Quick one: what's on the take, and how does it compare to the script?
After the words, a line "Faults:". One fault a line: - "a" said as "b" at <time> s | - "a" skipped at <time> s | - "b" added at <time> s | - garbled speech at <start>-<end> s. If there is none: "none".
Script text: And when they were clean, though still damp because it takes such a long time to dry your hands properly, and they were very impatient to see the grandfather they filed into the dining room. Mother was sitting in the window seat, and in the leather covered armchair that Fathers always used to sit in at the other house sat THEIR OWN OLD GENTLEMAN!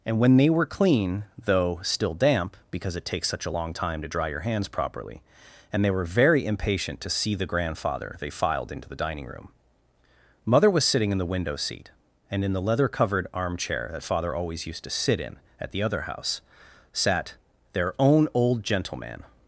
And when they were clean, though still damp because it takes such a long time to dry your hands properly, and they were very impatient to see the grandfather they filed into the dining room. Mother was sitting in the window seat, and in the leather covered armchair that Father always used to sit in at the other house sat THEIR OWN OLD GENTLEMAN!
Faults:
- "Fathers" said as "Father" at 14.0 s